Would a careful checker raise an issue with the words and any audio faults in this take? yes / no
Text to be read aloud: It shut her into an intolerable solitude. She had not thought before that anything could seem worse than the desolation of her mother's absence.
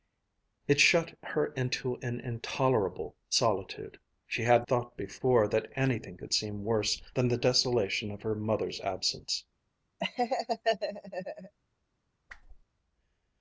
yes